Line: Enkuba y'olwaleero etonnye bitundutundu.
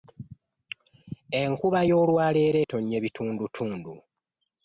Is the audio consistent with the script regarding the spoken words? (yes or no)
yes